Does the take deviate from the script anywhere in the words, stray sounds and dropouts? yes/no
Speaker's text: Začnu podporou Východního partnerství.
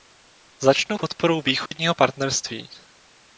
yes